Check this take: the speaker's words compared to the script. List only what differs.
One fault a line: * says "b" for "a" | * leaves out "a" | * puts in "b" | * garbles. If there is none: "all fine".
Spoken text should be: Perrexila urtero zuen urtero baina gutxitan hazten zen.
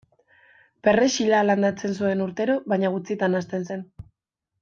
* says "landatzen" for "urtero"